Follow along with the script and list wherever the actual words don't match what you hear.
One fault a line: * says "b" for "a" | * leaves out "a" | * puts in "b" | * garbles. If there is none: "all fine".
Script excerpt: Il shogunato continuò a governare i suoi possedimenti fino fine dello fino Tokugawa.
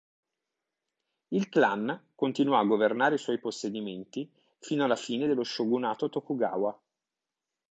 * says "clan" for "shogunato"
* puts in "alla"
* says "shogunato" for "fino"